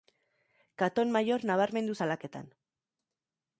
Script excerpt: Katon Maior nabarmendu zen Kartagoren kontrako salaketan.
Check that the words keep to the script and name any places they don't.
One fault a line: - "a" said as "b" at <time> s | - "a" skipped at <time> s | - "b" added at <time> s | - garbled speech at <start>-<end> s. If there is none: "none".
- "zen Kartagoren kontrako" skipped at 2.0 s